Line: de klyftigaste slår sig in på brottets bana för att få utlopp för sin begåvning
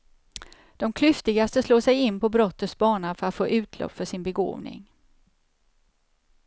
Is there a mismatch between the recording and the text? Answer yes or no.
no